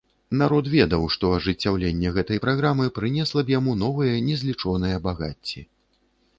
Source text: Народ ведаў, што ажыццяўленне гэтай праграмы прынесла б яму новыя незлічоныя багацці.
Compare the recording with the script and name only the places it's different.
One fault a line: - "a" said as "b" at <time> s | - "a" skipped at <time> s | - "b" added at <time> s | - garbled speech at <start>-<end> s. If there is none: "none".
none